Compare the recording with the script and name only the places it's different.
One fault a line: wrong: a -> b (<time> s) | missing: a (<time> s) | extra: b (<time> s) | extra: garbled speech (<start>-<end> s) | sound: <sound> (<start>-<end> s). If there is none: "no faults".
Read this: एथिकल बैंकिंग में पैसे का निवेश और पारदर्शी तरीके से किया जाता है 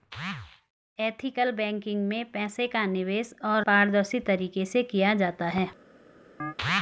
sound: chirp (6.4-6.5 s)